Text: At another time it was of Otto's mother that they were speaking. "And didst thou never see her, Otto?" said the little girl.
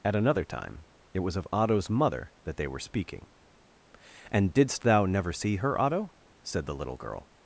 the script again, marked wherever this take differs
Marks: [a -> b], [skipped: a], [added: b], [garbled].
At another time it was of Otto's mother that they were speaking. "And didst thou never see her, Otto?" said the little girl.